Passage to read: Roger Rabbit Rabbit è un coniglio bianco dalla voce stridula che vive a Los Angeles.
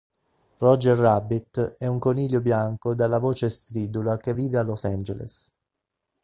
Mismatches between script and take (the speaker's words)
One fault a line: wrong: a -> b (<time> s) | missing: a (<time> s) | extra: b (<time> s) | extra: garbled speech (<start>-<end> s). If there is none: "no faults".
missing: Rabbit (1.8 s)